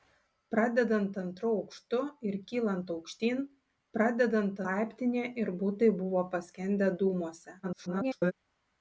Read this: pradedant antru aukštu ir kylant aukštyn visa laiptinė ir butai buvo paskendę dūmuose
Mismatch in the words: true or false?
true